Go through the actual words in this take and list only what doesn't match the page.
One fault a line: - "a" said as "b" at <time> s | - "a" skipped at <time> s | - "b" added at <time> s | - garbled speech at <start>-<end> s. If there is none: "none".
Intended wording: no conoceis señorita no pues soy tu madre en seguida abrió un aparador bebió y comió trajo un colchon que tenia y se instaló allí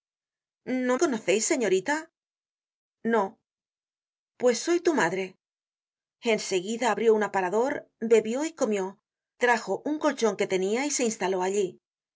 none